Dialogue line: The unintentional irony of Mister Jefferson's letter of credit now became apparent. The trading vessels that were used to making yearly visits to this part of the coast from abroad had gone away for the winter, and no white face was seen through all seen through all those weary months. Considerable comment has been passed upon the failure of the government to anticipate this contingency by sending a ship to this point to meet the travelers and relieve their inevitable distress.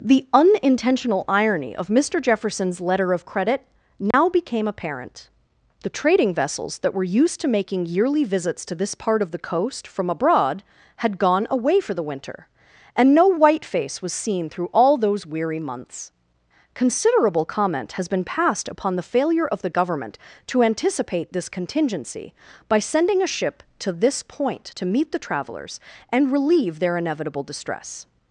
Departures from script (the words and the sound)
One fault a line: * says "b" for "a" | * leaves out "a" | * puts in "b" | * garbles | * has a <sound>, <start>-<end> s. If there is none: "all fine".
* has a dropout, 4.1-4.1 s
* leaves out "seen through all"